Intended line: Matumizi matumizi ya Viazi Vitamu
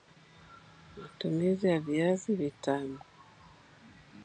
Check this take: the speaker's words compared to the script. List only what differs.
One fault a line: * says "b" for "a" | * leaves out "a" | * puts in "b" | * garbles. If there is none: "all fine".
* leaves out "matumizi"